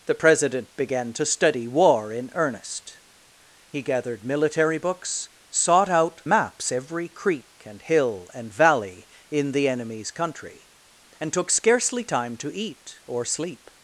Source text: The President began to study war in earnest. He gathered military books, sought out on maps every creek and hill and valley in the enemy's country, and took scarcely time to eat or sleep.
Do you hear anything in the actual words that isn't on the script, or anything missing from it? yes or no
yes